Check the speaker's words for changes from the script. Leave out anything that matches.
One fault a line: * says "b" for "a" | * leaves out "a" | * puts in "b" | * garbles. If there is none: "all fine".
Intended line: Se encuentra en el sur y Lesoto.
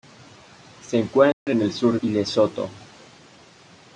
all fine